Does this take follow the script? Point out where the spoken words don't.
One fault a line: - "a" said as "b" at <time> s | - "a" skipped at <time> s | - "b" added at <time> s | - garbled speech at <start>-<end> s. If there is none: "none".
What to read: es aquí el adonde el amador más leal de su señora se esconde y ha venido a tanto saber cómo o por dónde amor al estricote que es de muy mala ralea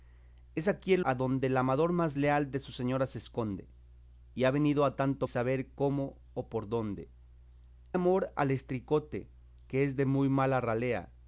none